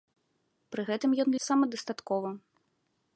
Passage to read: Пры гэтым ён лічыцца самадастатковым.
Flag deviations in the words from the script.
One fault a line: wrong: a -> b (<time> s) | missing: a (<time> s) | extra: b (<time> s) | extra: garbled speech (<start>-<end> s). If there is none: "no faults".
missing: лічыцца (1.3 s)